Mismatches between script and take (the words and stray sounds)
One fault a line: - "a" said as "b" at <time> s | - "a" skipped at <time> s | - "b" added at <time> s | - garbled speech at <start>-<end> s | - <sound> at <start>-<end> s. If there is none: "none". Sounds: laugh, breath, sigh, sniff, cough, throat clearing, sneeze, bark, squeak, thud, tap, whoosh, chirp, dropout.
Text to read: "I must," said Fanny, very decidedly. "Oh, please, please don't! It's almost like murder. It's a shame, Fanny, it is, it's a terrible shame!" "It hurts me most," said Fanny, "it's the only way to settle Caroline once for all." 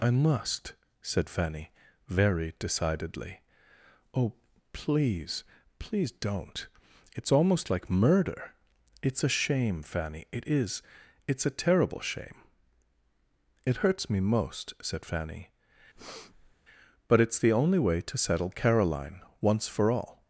- breath at 16.0-16.6 s
- "but" added at 17.1 s